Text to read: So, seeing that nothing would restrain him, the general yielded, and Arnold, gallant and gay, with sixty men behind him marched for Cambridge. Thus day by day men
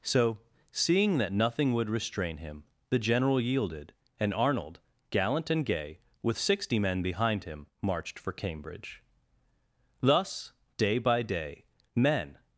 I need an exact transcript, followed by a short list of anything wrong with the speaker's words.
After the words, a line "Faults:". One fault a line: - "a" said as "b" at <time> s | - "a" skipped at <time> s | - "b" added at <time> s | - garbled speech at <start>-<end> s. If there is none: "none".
So, seeing that nothing would restrain him, the general yielded, and Arnold, gallant and gay, with sixty men behind him marched for Cambridge. Thus day by day men
Faults:
none